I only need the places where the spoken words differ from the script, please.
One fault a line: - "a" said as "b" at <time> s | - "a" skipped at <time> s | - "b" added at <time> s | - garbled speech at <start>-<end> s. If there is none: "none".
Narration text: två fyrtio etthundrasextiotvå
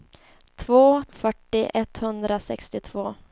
none